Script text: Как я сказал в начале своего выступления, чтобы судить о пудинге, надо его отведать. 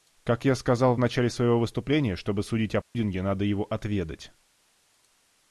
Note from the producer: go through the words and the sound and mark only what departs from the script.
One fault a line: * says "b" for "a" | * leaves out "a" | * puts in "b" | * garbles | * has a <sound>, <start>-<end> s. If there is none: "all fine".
* has a dropout, 2.8-3.0 s